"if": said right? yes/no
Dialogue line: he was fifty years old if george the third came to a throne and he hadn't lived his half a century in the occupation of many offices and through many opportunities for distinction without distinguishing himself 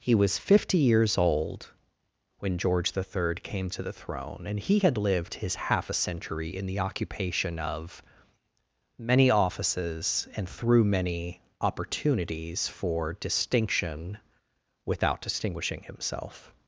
no